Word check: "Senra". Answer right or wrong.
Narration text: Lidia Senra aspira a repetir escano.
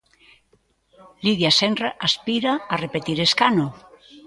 right